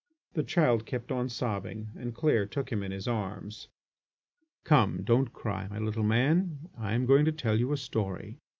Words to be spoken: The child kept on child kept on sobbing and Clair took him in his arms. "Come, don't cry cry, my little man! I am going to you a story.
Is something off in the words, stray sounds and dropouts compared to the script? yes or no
yes